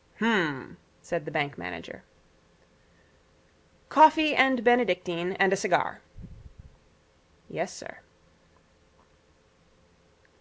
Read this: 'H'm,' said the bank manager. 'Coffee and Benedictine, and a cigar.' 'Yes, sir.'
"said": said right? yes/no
yes